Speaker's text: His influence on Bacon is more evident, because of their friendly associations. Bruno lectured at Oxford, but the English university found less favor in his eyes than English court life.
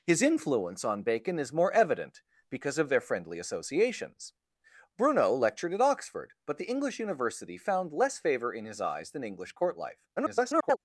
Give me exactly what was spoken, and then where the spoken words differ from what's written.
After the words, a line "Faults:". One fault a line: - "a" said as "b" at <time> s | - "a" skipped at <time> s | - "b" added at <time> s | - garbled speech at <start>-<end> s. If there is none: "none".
His influence on Bacon is more evident, because of their friendly associations. Bruno lectured at Oxford, but the English university found less favor in his eyes than English court life. [garbled]
Faults:
- garbled speech at 10.2-10.8 s